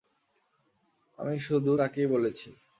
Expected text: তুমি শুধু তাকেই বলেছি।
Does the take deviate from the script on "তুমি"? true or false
true